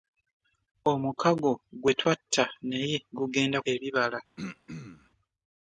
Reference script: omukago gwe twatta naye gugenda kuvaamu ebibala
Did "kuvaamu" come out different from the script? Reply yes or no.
yes